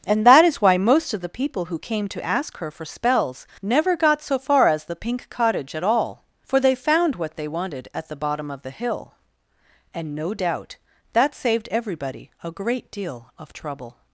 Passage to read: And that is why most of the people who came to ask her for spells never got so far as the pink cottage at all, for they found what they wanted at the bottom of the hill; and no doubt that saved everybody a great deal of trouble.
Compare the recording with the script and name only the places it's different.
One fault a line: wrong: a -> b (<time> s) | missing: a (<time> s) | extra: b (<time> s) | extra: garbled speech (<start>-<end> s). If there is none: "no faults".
no faults